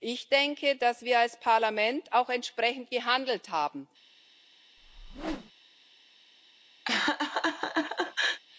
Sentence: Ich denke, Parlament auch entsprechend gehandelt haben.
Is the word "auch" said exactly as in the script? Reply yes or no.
yes